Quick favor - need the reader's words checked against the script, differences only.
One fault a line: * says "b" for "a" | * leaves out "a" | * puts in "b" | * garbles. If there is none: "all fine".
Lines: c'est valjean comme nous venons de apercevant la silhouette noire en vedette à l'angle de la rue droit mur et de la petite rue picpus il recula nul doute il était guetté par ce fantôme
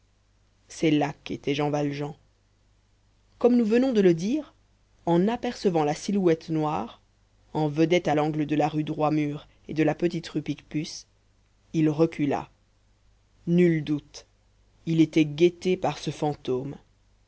* puts in "là qu'était jean"
* puts in "le dire en"